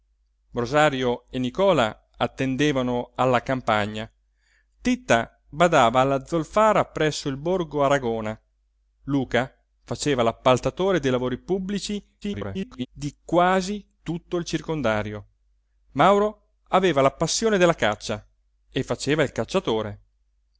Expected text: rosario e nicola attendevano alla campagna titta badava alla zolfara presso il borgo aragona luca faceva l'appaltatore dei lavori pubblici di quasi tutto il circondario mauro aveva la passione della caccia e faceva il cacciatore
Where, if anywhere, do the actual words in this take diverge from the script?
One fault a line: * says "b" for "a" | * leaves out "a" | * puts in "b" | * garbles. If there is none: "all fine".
* garbles